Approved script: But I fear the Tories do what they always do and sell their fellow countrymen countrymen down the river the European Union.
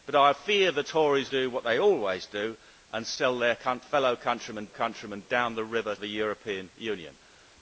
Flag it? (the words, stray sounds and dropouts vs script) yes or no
no